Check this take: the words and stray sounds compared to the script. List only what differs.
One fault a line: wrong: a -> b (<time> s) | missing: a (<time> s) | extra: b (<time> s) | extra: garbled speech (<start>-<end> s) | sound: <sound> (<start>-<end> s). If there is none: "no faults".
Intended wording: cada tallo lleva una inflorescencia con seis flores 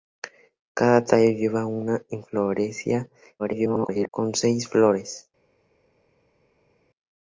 extra: garbled speech (3.4-4.1 s)